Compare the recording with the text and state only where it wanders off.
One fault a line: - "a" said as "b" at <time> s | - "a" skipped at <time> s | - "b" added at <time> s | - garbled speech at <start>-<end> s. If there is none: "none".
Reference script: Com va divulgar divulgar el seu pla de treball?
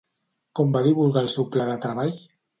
- "divulgar" skipped at 1.3 s